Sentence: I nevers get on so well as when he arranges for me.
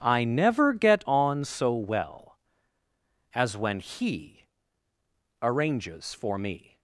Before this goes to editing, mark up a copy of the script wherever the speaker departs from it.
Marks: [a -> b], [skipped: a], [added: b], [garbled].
I [nevers -> never] get on so well as when he arranges for me.